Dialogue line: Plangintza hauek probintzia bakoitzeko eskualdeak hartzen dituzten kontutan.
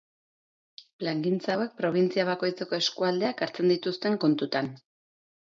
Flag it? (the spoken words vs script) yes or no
no